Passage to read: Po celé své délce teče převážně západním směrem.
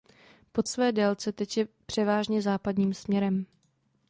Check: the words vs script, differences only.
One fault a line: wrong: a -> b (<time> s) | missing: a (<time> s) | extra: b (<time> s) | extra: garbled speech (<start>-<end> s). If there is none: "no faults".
missing: celé (0.6 s)